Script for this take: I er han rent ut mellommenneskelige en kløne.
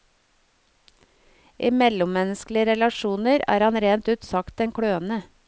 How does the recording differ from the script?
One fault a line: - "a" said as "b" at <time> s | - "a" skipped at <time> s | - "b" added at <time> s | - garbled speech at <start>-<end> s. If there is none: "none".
- "mellommenneskelige relasjoner" added at 1.8 s
- "mellommenneskelige" said as "sagt" at 4.3 s